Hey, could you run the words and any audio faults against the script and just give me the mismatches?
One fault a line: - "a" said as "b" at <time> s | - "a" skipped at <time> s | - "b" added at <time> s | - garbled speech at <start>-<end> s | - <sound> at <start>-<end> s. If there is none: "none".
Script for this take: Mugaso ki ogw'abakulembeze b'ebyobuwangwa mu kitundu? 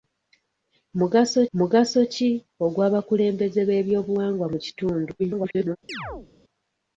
- "mugaso" added at 1.6 s
- garbled speech at 5.2-5.8 s
- chirp at 5.9-6.3 s